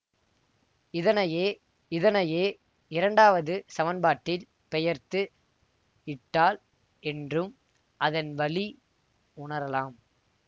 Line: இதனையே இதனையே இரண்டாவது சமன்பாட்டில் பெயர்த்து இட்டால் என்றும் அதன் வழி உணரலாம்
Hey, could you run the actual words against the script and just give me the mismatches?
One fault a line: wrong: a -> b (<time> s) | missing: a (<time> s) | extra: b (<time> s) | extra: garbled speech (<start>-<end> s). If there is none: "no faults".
no faults